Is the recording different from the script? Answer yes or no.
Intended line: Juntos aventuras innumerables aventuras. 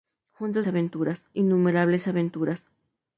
no